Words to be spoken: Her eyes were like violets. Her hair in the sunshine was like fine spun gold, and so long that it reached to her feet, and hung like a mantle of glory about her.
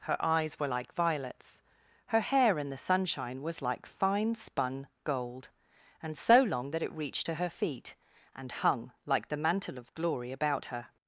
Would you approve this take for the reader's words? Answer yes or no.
no